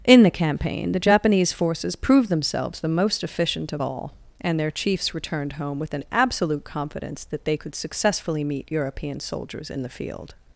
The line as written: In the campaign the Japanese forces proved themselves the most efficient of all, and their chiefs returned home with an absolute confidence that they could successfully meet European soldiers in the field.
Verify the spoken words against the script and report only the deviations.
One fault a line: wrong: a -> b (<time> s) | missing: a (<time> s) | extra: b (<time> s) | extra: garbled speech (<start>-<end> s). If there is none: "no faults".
no faults